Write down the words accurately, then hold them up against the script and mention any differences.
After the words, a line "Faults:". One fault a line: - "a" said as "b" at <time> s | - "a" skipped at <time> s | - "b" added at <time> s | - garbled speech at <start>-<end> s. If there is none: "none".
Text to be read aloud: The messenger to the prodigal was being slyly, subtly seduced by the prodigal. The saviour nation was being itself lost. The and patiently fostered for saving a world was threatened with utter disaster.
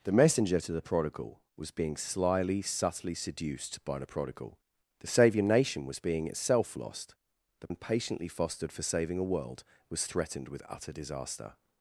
The messenger to the prodigal was being slyly, subtly seduced by the prodigal. The saviour nation was being itself lost. The and patiently fostered for saving a world was threatened with utter disaster.
Faults:
none